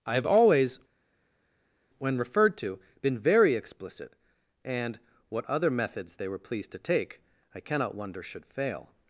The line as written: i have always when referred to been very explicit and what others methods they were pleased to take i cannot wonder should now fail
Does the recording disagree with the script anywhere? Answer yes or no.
yes